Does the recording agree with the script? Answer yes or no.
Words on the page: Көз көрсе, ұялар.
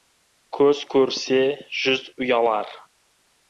no